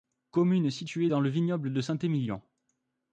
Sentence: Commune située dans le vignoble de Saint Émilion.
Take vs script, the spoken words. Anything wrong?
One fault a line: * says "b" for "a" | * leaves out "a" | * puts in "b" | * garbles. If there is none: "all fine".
all fine